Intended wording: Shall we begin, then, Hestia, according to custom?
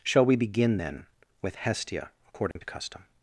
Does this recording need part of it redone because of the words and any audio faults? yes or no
yes